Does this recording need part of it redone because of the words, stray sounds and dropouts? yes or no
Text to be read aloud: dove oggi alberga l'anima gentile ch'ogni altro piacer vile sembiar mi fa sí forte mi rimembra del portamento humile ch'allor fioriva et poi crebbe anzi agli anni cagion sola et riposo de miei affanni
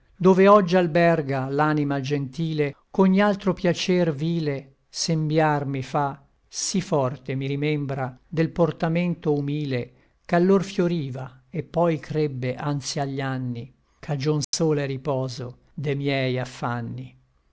yes